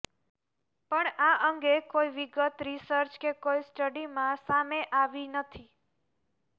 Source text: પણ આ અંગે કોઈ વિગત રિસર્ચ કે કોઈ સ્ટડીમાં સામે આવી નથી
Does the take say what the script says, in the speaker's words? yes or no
yes